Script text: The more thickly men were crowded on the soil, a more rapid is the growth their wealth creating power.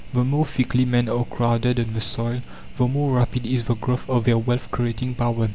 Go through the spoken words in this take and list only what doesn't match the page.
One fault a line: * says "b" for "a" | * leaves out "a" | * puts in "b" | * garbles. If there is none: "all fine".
* says "are" for "were"
* says "the" for "a"
* puts in "of"